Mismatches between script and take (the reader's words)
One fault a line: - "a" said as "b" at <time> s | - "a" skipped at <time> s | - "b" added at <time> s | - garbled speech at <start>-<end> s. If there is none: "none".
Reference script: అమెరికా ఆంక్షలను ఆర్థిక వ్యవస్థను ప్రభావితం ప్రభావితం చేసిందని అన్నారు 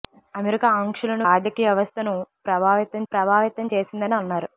none